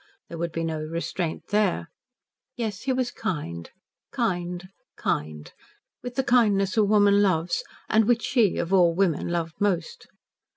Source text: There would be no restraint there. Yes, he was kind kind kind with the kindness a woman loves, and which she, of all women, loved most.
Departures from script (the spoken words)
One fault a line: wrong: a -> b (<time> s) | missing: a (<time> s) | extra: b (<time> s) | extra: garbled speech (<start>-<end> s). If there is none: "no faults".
no faults